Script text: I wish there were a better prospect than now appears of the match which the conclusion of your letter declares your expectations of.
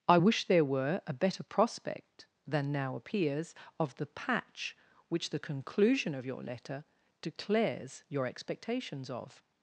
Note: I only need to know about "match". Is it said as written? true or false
false